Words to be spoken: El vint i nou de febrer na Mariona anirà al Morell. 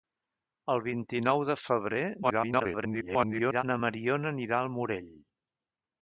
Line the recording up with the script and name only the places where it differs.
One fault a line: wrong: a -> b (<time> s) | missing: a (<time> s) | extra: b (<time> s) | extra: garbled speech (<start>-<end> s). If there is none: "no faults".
extra: garbled speech (2.2-3.6 s)